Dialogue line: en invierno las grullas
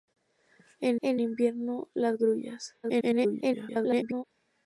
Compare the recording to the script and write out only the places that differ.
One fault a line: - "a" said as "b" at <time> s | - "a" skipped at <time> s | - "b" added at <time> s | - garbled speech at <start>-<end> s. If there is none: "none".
- "en" added at 1.0 s
- garbled speech at 2.8-4.2 s